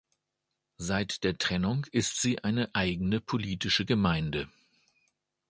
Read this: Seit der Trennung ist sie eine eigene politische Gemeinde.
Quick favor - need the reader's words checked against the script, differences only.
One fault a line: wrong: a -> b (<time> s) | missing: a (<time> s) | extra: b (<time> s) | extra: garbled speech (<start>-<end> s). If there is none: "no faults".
no faults